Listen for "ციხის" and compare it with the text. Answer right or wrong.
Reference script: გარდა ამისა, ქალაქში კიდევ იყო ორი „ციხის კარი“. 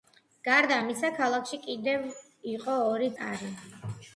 wrong